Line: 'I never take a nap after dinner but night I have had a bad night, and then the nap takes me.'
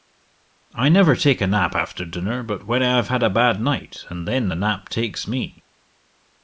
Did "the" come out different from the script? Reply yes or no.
no